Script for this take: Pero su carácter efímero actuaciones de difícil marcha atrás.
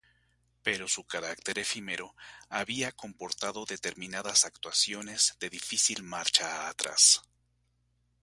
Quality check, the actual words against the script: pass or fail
fail